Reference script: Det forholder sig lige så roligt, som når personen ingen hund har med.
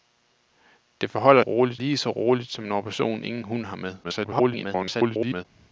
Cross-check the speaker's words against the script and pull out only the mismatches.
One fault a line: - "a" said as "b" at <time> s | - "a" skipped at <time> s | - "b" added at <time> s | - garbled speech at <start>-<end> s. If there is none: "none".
- "sig" said as "roligt" at 1.4 s
- garbled speech at 4.0-5.4 s